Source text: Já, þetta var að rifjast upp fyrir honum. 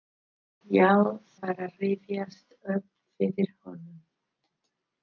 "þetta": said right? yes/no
no